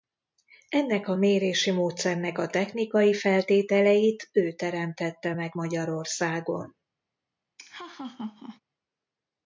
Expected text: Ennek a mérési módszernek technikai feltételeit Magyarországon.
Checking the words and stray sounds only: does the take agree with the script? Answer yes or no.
no